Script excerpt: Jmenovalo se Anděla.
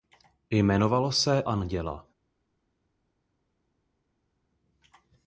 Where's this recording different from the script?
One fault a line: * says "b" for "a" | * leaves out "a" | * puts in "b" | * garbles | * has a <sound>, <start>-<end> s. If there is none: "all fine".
all fine